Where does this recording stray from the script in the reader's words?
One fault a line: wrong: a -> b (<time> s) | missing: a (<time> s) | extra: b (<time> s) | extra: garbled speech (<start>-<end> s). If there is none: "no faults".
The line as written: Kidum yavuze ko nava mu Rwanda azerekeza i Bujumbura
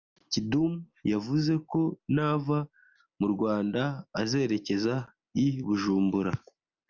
no faults